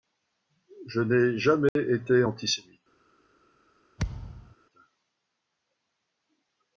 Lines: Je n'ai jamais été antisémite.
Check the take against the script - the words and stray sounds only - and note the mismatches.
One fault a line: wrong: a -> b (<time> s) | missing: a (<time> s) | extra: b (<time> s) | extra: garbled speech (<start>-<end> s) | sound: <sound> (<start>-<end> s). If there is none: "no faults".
sound: dropout (1.7-1.8 s)
sound: thud (4.0-4.6 s)